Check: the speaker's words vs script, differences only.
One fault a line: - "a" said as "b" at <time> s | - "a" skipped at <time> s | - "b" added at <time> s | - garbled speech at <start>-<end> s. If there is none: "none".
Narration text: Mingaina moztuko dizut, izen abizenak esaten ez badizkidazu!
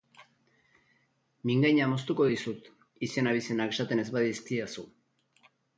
none